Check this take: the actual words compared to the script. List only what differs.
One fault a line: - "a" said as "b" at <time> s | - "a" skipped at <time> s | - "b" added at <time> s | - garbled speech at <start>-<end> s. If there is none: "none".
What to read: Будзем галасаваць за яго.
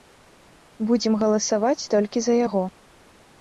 - "толькі" added at 2.0 s